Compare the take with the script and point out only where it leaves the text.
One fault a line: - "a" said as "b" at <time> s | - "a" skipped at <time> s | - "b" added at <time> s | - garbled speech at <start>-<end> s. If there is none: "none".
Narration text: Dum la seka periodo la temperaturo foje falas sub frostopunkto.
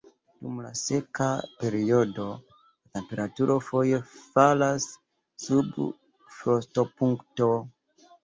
none